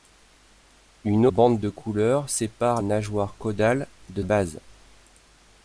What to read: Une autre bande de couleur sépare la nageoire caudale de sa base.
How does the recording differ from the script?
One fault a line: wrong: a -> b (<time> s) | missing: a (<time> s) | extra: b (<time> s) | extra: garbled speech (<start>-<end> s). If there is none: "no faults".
missing: autre (1.3 s)
missing: la (2.8 s)
missing: sa (4.2 s)